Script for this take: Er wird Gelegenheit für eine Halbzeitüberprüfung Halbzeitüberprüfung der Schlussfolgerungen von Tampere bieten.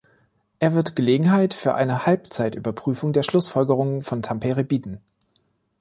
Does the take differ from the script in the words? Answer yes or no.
yes